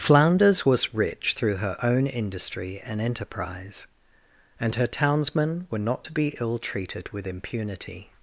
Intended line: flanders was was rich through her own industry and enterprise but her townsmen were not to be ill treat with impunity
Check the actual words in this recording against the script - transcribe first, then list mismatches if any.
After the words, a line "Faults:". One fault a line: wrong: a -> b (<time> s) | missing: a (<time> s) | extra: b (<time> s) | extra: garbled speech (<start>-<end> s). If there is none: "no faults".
flanders was rich through her own industry and enterprise and her townsmen were not to be ill treated with impunity
Faults:
missing: was (0.9 s)
wrong: but -> and (4.6 s)
wrong: treat -> treated (6.6 s)